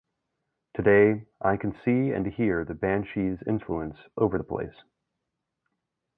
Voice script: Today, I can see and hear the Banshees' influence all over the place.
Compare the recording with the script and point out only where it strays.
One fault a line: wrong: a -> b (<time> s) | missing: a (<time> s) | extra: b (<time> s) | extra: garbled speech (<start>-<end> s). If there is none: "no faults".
missing: all (4.0 s)